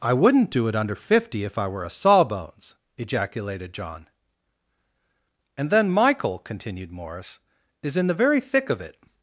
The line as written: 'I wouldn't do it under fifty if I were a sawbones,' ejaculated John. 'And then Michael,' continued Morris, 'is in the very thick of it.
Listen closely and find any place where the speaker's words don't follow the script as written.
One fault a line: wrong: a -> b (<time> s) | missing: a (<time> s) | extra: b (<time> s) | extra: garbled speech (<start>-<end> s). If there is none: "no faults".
no faults